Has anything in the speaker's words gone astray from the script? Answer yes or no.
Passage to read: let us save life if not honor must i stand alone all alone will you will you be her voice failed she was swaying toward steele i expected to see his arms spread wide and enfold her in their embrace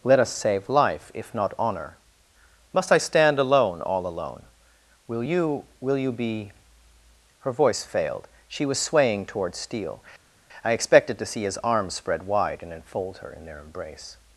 no